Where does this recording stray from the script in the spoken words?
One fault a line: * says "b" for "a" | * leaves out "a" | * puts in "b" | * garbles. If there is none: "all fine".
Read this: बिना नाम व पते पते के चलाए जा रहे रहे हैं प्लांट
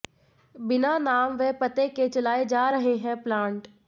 * leaves out "पते"
* leaves out "रहे"